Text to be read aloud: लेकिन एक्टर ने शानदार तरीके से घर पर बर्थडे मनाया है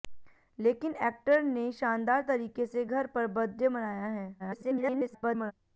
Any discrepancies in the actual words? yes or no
yes